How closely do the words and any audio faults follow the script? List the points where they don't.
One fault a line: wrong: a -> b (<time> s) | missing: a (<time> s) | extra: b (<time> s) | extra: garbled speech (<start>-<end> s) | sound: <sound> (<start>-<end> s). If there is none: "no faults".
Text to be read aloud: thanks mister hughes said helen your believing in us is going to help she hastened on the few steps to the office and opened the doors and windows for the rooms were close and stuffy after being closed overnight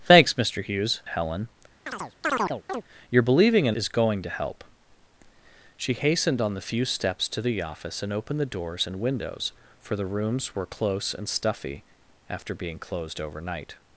missing: said (1.0 s)
sound: chirp (1.9-2.8 s)
missing: us (3.8 s)